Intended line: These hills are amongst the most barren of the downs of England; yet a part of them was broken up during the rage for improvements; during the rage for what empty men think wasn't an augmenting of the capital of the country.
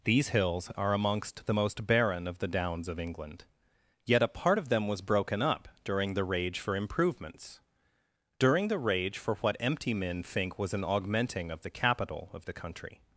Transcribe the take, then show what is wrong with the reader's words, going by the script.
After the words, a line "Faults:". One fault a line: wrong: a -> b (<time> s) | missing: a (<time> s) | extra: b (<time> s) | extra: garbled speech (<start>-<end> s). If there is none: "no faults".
These hills are amongst the most barren of the downs of England; yet a part of them was broken up during the rage for improvements; during the rage for what empty men think was an augmenting of the capital of the country.
Faults:
wrong: wasn't -> was (10.6 s)